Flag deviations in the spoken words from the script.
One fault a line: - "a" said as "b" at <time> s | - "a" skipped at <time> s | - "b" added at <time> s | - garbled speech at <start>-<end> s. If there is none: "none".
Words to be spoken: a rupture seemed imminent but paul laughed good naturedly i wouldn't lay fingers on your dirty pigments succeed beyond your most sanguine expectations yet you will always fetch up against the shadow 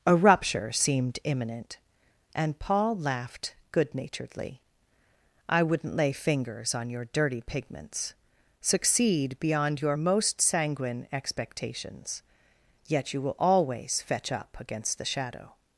- "but" said as "and" at 2.3 s